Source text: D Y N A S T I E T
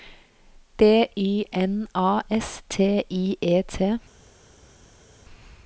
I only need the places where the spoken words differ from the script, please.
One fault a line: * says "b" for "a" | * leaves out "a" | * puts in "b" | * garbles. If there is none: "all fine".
all fine